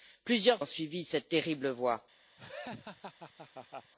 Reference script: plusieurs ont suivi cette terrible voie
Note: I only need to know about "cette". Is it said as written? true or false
true